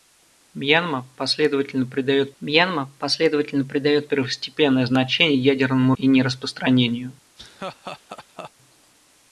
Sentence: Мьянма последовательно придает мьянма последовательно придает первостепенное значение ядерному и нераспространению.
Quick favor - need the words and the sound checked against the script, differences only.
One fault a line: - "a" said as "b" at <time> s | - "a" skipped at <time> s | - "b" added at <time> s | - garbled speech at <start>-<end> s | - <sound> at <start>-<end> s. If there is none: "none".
- laugh at 7.4-8.5 s